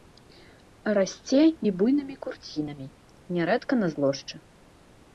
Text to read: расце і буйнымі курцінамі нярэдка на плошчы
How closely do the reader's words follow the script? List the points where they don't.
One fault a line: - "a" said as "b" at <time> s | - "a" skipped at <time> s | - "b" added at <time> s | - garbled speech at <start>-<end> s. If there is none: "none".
none